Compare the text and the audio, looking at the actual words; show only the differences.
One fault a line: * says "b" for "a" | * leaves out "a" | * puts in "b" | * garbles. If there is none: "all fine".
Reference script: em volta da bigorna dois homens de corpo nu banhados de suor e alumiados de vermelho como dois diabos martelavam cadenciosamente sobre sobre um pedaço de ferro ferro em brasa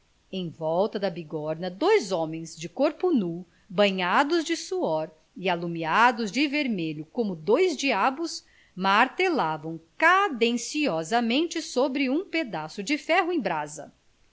* leaves out "sobre"
* leaves out "ferro"